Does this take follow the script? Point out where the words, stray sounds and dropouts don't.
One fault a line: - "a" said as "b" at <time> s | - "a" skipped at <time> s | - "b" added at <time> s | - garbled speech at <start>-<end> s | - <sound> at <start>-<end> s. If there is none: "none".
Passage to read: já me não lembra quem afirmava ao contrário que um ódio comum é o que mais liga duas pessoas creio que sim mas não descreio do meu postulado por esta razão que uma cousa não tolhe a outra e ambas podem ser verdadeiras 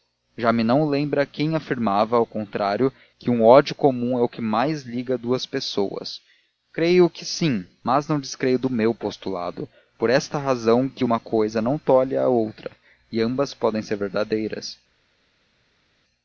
none